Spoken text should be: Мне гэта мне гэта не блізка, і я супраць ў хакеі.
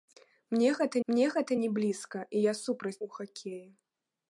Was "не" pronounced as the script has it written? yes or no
yes